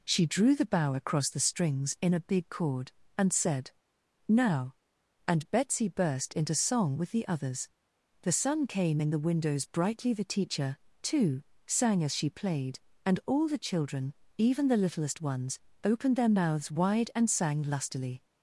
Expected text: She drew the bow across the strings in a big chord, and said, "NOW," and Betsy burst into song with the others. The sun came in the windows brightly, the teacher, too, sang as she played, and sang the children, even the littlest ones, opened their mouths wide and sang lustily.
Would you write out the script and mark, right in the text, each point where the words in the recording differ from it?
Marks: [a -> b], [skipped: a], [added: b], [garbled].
She drew the bow across the strings in a big chord, and said, "NOW," and Betsy burst into song with the others. The sun came in the windows brightly, the teacher, too, sang as she played, and [sang -> all] the children, even the littlest ones, opened their mouths wide and sang lustily.